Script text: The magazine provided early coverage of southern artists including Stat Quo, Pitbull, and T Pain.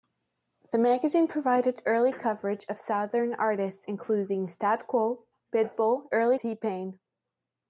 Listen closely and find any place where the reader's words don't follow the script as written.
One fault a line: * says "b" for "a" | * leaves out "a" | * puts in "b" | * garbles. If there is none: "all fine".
* says "early" for "and"